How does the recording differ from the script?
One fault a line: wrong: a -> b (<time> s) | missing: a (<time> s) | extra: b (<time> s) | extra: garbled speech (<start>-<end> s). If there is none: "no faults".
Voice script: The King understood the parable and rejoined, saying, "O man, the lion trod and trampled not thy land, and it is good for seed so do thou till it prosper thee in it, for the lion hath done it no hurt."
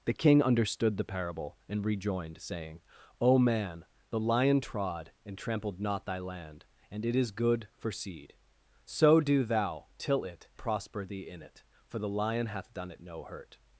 no faults